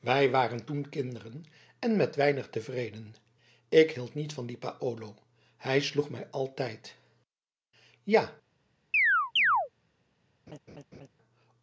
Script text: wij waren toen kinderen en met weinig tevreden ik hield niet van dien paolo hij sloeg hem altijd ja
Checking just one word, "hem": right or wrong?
wrong